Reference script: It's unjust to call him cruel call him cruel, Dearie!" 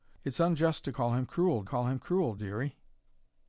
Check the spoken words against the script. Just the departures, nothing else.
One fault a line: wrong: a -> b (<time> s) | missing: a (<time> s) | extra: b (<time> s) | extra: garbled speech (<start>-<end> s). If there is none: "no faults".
no faults